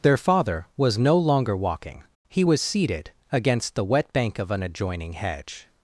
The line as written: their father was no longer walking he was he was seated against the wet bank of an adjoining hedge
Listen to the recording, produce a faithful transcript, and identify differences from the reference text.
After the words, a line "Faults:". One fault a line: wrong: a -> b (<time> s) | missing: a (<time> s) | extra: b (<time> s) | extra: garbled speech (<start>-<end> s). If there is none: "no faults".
their father was no longer walking he was seated against the wet bank of an adjoining hedge
Faults:
missing: he was (2.6 s)